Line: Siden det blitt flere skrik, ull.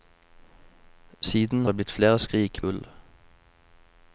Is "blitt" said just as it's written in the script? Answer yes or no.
yes